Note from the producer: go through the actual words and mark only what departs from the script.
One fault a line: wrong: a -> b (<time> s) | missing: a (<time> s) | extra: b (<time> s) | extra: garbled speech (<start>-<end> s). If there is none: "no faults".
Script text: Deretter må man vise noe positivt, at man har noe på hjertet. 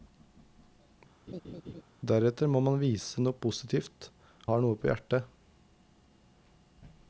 missing: at man (4.1 s)